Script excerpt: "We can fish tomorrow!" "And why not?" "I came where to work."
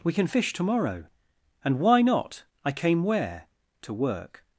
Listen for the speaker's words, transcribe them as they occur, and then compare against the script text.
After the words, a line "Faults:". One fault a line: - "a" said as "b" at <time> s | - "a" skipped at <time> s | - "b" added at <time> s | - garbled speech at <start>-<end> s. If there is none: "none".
"We can fish tomorrow!" "And why not?" "I came where to work."
Faults:
none